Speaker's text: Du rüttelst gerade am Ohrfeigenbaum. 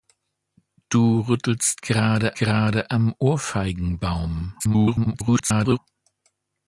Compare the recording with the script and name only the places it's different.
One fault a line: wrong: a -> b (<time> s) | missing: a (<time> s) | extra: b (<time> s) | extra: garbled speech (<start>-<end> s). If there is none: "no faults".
extra: gerade (2.3 s)
extra: garbled speech (4.6-5.8 s)